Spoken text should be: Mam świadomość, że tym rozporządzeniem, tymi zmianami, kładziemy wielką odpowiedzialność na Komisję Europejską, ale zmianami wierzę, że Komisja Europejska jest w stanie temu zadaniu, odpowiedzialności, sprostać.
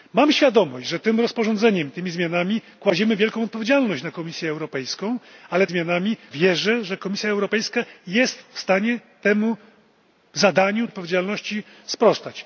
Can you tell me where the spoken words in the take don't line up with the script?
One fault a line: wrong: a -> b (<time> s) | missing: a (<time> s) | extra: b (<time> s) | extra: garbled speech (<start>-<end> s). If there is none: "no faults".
no faults